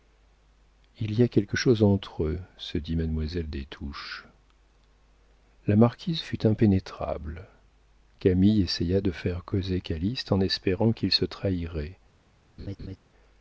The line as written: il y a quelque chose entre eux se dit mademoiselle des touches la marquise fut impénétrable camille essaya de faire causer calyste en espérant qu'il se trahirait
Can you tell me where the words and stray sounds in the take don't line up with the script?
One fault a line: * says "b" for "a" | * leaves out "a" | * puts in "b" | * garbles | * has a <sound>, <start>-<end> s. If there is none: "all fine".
* has a laugh, 12.6-13.0 s